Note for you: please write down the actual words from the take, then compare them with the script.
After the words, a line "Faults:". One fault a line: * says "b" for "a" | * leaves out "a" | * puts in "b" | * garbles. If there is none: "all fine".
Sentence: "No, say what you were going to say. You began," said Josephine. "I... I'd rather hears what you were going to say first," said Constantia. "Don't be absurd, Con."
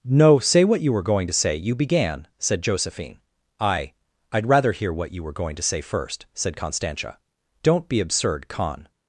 "No, say what you were going to say. You began," said Josephine. "I... I'd rather hear what you were going to say first," said Constantia. "Don't be absurd, Con."
Faults:
* says "hear" for "hears"